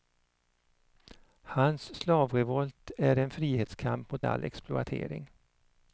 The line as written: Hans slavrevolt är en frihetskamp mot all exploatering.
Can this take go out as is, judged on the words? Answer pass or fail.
pass